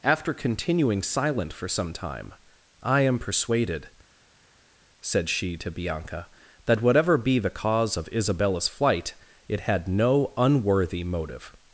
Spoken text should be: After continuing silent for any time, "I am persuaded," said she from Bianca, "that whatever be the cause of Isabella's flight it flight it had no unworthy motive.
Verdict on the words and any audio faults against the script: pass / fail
fail